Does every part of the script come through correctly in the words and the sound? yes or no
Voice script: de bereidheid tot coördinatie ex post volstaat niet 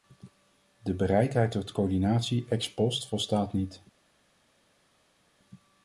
yes